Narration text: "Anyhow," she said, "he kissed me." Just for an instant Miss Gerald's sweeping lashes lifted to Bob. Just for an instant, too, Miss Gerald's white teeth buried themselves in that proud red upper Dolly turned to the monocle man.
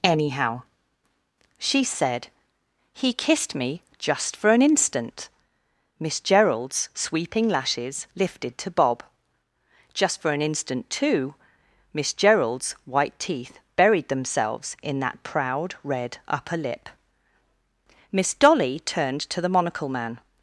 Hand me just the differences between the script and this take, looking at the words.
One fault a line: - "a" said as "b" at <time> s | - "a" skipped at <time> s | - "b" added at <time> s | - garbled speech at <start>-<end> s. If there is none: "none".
- "lip Miss" added at 16.6 s